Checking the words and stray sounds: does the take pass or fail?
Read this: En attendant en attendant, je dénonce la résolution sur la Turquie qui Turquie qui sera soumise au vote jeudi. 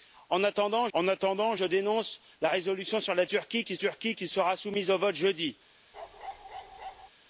fail